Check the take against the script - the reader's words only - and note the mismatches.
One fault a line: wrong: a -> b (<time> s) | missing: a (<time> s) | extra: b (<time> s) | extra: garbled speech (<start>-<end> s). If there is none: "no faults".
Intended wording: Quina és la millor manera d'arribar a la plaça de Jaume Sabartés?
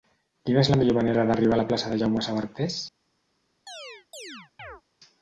no faults